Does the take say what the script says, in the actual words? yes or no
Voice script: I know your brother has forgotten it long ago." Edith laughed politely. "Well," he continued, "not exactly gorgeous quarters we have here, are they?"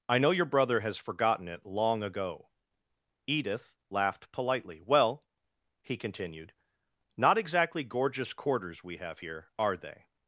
yes